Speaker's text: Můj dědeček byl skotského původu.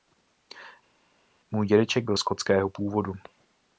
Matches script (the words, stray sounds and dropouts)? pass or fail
pass